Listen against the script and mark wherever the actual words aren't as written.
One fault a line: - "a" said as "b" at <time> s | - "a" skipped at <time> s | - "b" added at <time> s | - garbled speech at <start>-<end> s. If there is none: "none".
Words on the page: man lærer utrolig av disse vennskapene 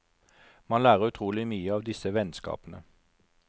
- "mye" added at 1.5 s